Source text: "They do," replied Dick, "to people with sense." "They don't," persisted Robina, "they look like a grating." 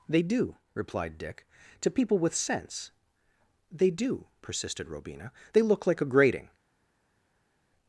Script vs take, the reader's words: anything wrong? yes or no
yes